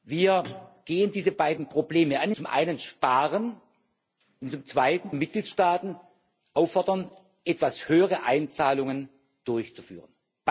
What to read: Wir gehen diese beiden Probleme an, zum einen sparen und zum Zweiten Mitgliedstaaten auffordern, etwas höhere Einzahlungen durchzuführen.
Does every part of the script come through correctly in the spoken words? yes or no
yes